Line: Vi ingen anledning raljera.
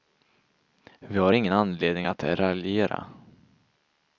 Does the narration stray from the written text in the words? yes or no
yes